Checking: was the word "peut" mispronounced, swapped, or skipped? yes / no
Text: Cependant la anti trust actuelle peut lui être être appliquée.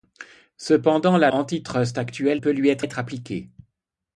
no